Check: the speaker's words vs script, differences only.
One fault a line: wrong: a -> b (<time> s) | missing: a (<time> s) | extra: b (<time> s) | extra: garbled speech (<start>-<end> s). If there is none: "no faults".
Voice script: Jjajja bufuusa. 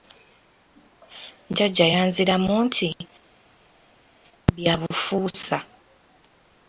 extra: yanziramu nti bya (1.9 s)